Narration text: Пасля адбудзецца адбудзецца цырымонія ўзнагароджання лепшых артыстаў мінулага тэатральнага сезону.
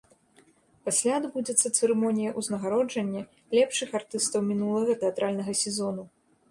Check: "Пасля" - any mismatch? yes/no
no